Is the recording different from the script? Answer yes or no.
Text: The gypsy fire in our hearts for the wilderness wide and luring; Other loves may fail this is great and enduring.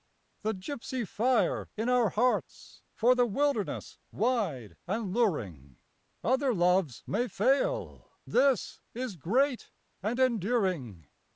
no